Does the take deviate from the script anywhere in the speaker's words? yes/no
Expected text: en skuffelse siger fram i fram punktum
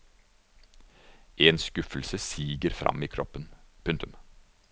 yes